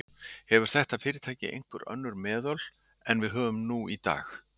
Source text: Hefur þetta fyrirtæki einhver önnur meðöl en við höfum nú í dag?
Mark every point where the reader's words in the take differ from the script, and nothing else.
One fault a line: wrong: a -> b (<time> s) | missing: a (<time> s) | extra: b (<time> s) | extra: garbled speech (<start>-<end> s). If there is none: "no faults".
no faults